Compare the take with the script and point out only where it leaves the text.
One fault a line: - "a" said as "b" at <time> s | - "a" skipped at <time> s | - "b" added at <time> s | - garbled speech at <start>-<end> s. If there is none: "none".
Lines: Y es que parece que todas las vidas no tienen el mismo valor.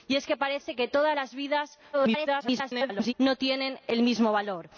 - garbled speech at 1.9-3.1 s